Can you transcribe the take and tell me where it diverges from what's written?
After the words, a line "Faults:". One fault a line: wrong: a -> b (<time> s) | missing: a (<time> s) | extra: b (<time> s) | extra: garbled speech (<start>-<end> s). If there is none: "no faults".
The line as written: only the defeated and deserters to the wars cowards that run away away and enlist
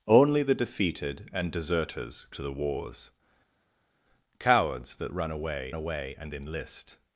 only the defeated and deserters to the wars cowards that run away away and enlist
Faults:
no faults